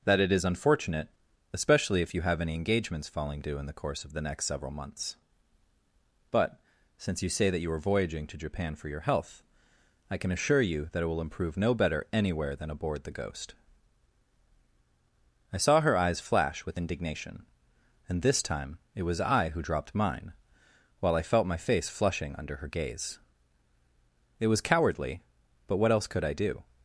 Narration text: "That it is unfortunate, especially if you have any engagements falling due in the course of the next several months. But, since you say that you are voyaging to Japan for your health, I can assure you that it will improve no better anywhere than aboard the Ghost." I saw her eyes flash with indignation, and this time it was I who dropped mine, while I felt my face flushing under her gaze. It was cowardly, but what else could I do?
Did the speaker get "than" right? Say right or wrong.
right